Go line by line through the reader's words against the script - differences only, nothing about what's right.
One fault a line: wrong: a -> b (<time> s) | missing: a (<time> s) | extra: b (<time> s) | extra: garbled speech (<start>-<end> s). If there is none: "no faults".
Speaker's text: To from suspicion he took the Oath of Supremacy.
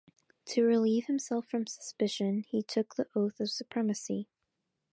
extra: relieve himself (0.6 s)